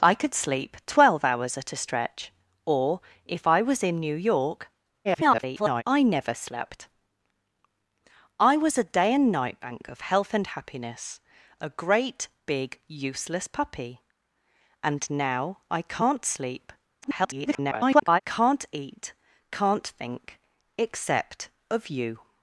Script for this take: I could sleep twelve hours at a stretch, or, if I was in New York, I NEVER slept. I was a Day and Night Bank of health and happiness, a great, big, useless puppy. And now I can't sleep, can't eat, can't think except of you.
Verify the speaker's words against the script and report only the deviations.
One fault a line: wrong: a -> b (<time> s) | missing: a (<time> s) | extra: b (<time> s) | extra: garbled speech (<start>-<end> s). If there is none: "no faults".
extra: garbled speech (5.0-5.8 s)
extra: garbled speech (17.0-18.2 s)